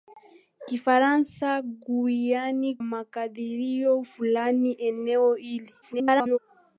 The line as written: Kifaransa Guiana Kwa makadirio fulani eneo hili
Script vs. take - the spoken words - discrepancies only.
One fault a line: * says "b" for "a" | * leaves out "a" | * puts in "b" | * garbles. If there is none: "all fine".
* leaves out "Kwa"
* garbles